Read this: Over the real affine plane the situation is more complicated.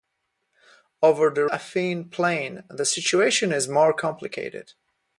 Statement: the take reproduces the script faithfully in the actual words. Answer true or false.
false